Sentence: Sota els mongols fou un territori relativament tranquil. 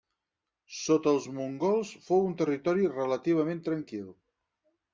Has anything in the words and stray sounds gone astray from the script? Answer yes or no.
no